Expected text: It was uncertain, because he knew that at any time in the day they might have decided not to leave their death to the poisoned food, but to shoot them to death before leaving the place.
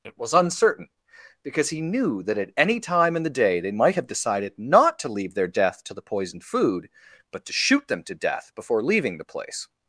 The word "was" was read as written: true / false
true